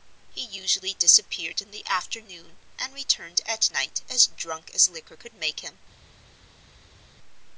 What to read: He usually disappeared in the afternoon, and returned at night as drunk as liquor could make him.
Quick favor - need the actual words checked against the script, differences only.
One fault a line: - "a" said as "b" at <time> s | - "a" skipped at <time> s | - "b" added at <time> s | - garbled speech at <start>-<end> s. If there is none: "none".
none